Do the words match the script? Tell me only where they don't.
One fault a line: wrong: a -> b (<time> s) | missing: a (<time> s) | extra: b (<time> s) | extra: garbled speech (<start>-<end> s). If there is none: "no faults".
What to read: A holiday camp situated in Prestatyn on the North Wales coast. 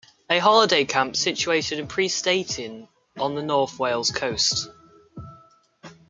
no faults